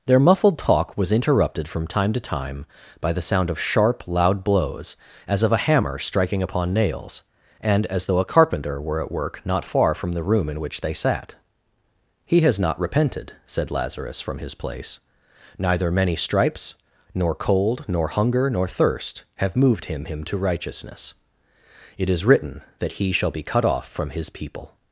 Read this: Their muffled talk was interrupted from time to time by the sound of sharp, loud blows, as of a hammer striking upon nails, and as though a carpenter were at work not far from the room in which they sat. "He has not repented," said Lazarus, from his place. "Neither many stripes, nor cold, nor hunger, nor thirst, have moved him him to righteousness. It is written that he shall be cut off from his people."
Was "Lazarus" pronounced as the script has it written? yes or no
yes